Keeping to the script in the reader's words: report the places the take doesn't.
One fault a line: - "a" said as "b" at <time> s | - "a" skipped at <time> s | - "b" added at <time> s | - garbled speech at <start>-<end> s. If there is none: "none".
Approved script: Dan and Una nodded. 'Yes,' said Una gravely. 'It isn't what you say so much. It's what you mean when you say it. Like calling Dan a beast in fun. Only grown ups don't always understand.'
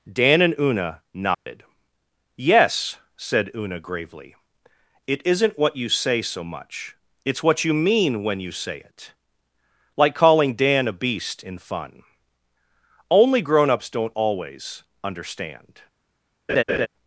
none